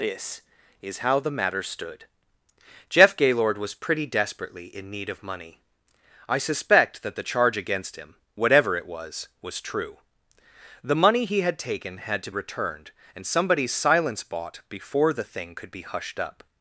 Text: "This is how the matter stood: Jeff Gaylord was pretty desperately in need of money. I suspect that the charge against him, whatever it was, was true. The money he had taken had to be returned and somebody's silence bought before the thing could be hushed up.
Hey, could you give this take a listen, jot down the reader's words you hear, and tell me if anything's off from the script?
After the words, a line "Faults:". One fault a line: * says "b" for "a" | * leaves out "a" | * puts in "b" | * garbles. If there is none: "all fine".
"This is how the matter stood: Jeff Gaylord was pretty desperately in need of money. I suspect that the charge against him, whatever it was, was true. The money he had taken had to returned and somebody's silence bought before the thing could be hushed up.
Faults:
* leaves out "be"